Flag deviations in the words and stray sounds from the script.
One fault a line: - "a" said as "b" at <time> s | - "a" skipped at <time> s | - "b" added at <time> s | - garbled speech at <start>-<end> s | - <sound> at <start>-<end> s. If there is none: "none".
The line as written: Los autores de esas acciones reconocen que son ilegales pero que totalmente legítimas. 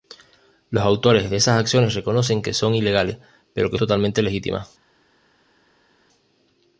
none